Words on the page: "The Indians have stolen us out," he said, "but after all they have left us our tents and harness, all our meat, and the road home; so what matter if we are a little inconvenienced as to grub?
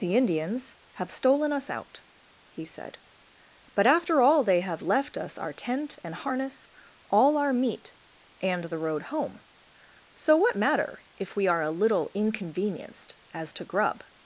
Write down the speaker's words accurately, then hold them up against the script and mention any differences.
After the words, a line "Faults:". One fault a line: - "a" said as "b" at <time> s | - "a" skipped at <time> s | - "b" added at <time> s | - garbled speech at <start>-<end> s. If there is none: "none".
"The Indians have stolen us out," he said, "but after all they have left us our tent and harness, all our meat, and the road home; so what matter if we are a little inconvenienced as to grub?
Faults:
- "tents" said as "tent" at 5.5 s